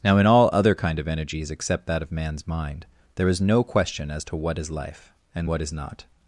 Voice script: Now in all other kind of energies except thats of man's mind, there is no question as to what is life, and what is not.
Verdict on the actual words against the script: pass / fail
fail